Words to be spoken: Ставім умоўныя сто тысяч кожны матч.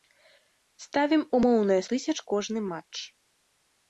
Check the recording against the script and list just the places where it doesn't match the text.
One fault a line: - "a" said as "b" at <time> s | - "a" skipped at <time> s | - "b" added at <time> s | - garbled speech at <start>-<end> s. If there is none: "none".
- "сто" skipped at 1.8 s